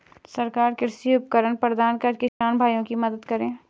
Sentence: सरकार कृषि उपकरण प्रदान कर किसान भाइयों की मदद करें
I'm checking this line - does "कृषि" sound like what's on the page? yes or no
yes